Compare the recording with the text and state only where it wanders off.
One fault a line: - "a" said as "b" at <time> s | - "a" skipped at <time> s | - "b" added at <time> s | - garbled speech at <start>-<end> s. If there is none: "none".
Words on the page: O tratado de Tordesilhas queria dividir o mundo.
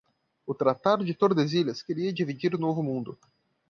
- "novo" added at 2.6 s